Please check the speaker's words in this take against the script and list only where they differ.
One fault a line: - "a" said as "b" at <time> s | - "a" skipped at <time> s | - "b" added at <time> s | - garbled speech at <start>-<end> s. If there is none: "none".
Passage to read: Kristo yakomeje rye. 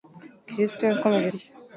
none